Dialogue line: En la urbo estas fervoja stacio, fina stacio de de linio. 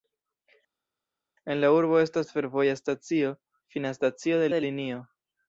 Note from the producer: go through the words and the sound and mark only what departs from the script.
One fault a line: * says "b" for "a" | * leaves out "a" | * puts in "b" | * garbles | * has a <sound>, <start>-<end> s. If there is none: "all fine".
all fine